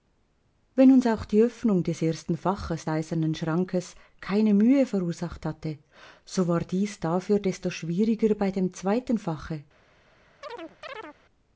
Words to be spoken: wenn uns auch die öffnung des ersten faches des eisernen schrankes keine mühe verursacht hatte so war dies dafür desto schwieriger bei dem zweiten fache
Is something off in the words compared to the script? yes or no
yes